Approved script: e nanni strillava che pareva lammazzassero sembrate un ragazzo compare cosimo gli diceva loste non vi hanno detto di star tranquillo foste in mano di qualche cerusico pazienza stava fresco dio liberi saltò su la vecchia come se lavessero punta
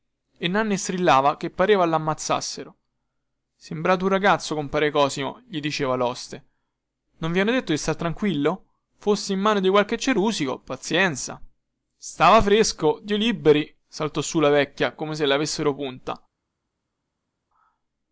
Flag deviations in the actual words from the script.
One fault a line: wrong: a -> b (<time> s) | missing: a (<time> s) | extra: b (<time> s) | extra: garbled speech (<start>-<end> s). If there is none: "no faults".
no faults